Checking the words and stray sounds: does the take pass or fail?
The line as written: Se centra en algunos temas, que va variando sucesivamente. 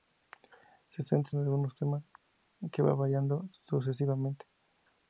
pass